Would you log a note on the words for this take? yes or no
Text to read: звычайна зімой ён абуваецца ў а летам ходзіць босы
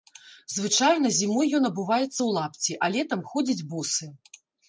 yes